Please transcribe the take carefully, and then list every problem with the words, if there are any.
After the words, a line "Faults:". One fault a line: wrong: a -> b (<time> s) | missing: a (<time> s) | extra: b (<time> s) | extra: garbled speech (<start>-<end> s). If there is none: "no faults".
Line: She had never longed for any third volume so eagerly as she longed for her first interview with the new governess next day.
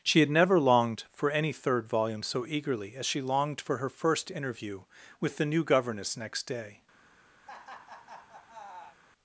She had never longed for any third volume so eagerly as she longed for her first interview with the new governess next day.
Faults:
no faults